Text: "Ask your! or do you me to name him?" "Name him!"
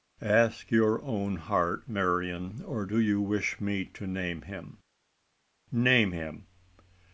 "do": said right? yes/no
yes